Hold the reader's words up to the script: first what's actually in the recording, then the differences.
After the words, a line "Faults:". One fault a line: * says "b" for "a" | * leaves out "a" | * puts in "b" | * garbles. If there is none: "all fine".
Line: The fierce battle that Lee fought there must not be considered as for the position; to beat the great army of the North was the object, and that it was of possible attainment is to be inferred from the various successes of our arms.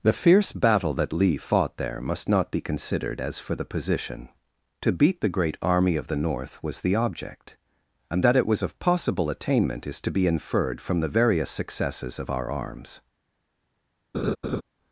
The fierce battle that Lee fought there must not be considered as for the position; to beat the great army of the North was the object, and that it was of possible attainment is to be inferred from the various successes of our arms.
Faults:
all fine